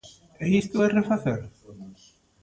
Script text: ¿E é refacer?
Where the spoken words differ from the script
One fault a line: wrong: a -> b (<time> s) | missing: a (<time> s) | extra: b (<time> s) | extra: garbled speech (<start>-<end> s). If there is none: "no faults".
extra: isto (0.6 s)